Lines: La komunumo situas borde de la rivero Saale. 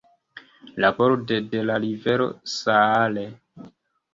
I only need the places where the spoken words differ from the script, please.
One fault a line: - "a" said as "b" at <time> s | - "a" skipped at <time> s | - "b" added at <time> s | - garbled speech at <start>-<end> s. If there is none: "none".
- "komunumo situas" skipped at 0.9 s